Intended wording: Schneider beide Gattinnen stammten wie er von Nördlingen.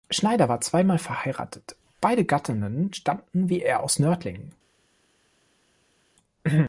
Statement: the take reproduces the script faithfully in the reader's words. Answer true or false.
false